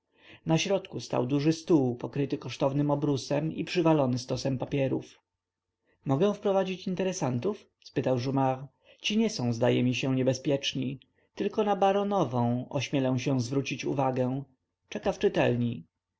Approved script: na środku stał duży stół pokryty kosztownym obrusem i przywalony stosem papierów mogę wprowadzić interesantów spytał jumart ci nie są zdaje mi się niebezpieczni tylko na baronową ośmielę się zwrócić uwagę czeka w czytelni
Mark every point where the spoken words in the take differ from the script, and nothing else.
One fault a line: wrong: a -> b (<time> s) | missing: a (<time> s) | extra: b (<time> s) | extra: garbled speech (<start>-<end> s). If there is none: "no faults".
no faults